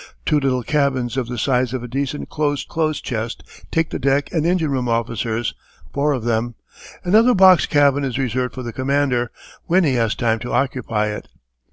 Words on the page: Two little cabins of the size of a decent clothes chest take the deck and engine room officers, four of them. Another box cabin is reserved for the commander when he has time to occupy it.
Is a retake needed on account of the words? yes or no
yes